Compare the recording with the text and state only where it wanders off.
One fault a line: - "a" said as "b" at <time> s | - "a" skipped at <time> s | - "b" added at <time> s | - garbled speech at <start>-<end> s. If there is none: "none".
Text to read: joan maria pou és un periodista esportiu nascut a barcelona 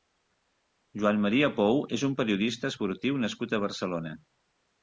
none